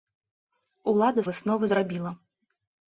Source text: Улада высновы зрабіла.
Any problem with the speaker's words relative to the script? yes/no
no